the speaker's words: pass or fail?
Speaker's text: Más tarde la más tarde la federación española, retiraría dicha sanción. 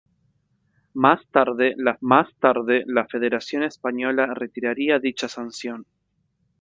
pass